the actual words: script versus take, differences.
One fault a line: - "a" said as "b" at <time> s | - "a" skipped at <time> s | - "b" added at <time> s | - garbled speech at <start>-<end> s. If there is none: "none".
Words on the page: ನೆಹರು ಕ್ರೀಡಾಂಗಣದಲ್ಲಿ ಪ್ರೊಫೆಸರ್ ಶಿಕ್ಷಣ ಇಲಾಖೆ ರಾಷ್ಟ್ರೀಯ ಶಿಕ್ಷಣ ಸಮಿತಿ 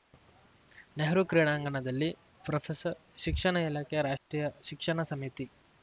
none